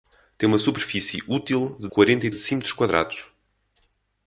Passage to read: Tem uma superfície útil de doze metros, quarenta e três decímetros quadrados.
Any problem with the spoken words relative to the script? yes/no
yes